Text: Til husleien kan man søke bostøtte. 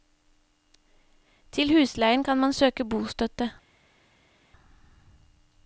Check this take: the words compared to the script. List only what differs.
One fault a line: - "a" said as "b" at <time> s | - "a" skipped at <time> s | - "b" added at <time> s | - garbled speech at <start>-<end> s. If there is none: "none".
none